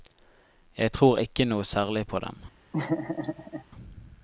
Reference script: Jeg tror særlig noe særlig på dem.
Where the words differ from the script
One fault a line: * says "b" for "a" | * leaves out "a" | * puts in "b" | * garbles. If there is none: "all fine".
* says "ikke" for "særlig"